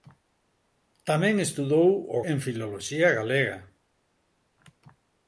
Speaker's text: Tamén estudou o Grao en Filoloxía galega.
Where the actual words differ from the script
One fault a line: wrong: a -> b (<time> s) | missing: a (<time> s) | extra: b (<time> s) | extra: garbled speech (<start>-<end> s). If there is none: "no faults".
missing: Grao (2.2 s)